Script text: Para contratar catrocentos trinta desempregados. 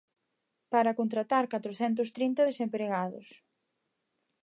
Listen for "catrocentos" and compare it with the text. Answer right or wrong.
right